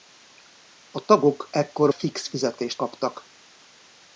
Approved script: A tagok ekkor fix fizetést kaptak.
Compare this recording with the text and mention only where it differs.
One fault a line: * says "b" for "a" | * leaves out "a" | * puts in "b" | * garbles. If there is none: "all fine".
all fine